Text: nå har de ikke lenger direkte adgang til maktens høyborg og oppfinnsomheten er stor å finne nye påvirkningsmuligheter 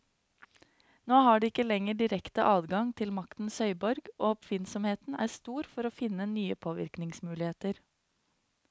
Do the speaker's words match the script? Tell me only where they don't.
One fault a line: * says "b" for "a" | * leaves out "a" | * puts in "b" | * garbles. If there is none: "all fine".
* puts in "for"